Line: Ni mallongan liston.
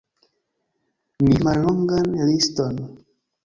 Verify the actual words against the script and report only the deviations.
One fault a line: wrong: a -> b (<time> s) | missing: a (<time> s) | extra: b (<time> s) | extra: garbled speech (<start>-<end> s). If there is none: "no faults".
no faults